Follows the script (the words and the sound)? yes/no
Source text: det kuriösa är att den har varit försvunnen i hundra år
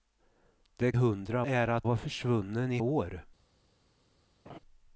no